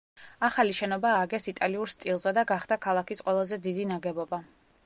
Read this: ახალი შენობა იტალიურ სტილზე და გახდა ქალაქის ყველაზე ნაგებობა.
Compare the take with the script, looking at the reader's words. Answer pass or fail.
fail